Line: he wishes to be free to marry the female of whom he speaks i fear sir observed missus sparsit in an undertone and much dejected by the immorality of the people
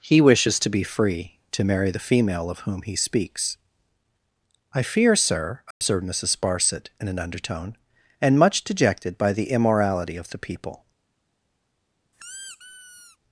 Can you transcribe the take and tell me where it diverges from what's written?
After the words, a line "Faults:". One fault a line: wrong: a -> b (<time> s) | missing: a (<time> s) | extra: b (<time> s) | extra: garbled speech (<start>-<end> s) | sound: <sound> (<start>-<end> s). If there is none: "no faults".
he wishes to be free to marry the female of whom he speaks i fear sir observed missus sparsit in an undertone and much dejected by the immorality of the people
Faults:
sound: dropout (5.7-5.8 s)
sound: squeak (12.1-13.2 s)